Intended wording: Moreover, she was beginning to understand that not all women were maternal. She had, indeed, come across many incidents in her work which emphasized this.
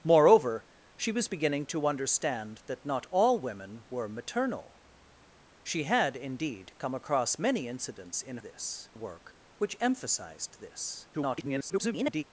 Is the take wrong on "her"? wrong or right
wrong